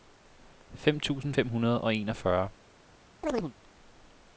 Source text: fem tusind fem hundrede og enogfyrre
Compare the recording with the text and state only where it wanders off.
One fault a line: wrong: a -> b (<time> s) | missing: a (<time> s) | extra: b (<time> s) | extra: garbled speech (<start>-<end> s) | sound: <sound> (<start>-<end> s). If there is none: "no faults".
sound: chirp (3.2-3.5 s)